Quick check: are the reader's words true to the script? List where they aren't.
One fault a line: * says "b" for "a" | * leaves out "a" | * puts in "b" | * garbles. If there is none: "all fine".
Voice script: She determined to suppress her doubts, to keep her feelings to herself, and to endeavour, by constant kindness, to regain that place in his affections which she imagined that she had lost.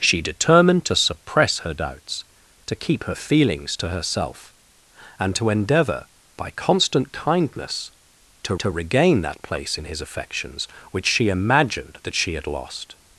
* puts in "to"